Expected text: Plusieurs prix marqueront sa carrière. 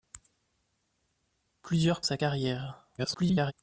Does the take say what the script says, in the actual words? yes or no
no